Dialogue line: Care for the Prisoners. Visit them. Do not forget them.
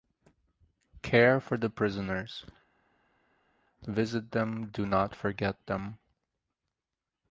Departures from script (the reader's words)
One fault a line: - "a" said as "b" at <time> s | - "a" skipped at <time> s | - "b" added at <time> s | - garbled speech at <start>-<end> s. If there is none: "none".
none